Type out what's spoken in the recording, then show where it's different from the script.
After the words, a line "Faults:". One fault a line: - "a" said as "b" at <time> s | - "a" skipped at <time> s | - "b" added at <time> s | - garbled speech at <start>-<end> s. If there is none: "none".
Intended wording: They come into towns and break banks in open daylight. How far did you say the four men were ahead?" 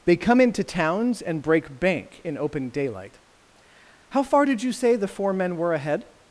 They come into towns and break bank in open daylight. How far did you say the four men were ahead?"
Faults:
- "banks" said as "bank" at 1.8 s